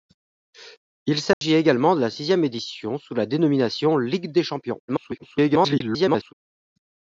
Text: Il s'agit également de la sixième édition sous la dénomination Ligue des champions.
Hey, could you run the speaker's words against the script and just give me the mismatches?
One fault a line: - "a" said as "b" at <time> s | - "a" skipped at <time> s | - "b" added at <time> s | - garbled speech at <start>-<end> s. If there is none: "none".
- garbled speech at 4.9-6.3 s